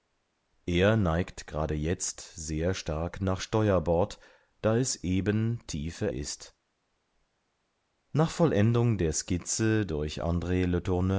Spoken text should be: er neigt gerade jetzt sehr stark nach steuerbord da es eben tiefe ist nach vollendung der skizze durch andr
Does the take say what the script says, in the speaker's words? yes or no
yes